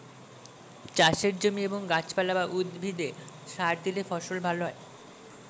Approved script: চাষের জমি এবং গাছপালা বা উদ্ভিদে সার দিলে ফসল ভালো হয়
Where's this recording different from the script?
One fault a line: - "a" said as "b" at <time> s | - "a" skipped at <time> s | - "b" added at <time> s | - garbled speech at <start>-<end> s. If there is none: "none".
none